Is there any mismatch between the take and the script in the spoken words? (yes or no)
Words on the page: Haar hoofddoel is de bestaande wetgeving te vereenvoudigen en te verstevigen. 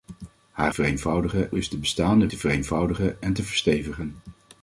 yes